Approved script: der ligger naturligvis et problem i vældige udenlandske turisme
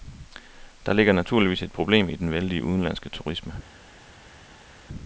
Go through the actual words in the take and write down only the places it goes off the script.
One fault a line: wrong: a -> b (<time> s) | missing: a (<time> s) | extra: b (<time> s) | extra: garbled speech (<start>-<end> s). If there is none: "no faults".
extra: den (2.1 s)